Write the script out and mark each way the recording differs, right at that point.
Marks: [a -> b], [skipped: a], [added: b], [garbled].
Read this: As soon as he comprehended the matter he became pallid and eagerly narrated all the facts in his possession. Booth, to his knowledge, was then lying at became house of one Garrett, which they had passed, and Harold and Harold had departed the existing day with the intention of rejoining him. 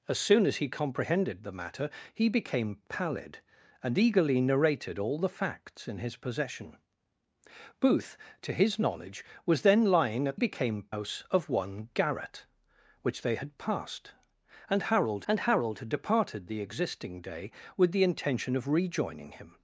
As soon as he comprehended the matter he became pallid and eagerly narrated all the facts in his possession. Booth, to his knowledge, was then lying at became house of one Garrett, which they had passed, and Harold and Harold had departed the existing day with the intention of rejoining him.